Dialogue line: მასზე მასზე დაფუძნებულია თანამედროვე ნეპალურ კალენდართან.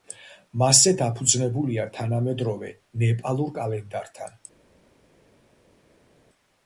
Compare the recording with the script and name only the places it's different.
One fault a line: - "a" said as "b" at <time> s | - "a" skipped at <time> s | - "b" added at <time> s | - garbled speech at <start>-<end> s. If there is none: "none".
- "მასზე" skipped at 0.9 s